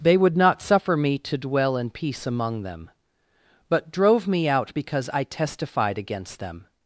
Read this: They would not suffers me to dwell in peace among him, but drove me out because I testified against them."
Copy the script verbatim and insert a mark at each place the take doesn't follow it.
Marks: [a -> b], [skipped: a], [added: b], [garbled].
They would not [suffers -> suffer] me to dwell in peace among [him, -> them] but drove me out because I testified against them."